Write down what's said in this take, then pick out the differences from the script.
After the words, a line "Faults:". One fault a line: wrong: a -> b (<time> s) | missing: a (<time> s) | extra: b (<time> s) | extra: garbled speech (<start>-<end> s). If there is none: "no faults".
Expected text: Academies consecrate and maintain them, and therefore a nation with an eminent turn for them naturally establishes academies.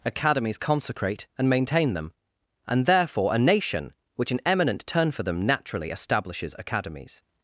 Academies consecrate and maintain them, and therefore a nation which an eminent turn for them naturally establishes academies.
Faults:
wrong: with -> which (4.2 s)